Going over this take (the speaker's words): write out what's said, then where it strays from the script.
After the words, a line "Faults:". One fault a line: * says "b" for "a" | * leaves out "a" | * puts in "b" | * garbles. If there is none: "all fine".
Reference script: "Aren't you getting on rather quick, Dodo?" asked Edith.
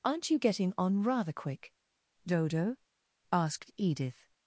"Aren't you getting on rather quick, Dodo?" asked Edith.
Faults:
all fine